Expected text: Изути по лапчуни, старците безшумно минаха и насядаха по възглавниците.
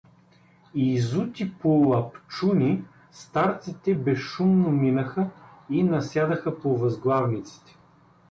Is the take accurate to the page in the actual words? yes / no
yes